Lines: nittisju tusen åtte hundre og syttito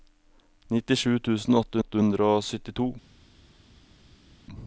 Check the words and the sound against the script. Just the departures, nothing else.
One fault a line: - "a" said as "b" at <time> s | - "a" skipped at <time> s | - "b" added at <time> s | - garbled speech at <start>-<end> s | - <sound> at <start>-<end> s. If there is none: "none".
- "åtte" added at 1.8 s